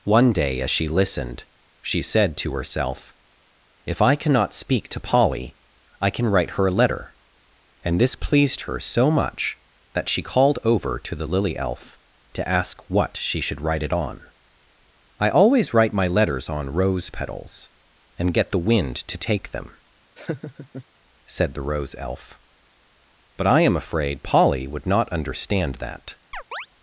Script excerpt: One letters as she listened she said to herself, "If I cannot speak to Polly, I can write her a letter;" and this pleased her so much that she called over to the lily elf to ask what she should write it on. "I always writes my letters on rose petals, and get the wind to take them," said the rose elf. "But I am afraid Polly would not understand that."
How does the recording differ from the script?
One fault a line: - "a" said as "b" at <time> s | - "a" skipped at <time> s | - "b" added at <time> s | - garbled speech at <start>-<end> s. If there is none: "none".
- "letters" said as "day" at 0.3 s
- "writes" said as "write" at 15.7 s